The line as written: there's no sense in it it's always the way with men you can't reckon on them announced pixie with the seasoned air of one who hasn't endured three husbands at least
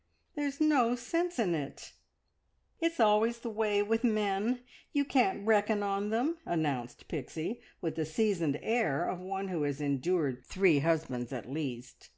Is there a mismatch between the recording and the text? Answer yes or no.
yes